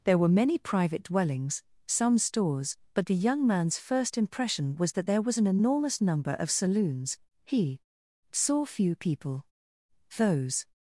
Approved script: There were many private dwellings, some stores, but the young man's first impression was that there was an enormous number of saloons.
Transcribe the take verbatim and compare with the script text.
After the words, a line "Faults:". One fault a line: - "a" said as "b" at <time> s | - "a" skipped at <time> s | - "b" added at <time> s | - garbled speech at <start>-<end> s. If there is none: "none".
There were many private dwellings, some stores, but the young man's first impression was that there was an enormous number of saloons. He saw few people; those
Faults:
- "He saw few people those" added at 7.4 s